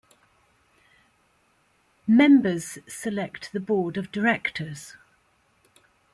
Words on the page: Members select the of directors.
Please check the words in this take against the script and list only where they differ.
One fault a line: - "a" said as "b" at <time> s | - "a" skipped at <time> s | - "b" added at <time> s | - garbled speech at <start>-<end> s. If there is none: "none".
- "board" added at 3.6 s